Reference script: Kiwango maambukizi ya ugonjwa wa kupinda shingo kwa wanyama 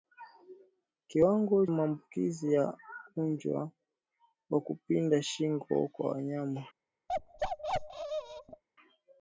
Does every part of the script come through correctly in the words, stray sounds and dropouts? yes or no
no